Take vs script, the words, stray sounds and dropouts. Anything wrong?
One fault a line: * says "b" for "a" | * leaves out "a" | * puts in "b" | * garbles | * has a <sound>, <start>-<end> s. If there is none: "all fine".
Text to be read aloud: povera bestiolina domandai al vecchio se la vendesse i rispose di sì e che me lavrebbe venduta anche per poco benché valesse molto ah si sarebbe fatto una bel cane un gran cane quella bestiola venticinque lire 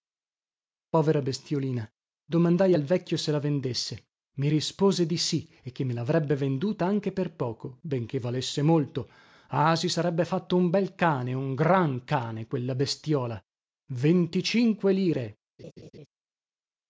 * says "un" for "una"
* has a laugh, 15.6-16.1 s